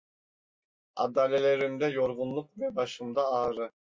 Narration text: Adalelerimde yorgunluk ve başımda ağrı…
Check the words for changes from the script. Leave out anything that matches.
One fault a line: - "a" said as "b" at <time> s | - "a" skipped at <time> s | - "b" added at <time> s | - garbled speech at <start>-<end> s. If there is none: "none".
none